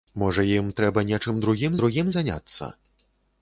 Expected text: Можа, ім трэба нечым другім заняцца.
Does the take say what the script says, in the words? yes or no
no